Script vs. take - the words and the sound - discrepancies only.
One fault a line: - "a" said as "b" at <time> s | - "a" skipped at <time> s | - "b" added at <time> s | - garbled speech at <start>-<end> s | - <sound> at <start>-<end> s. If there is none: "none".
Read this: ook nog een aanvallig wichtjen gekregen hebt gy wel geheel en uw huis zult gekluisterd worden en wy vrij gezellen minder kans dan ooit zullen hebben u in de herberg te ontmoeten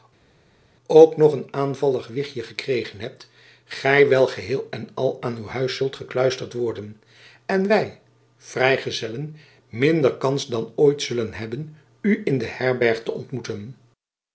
- "al aan" added at 4.9 s